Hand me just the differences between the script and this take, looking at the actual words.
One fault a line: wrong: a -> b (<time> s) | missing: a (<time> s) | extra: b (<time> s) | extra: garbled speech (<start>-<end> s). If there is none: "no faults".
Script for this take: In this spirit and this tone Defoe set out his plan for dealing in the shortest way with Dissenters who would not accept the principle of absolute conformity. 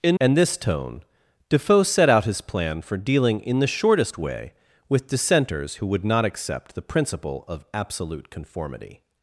missing: this spirit (0.2 s)